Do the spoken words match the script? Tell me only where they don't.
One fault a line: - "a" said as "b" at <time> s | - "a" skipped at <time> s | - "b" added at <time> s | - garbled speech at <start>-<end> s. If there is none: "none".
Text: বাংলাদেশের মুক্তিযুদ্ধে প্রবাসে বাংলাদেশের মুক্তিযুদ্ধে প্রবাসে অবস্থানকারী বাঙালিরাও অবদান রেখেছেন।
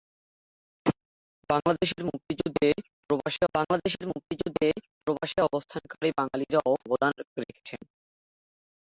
none